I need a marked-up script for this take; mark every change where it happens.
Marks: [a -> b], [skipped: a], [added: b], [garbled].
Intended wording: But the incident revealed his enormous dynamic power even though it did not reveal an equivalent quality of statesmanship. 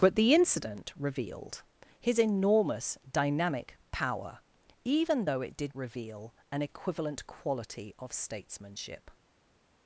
But the incident revealed his enormous dynamic power even though it did [skipped: not] reveal an equivalent quality of statesmanship.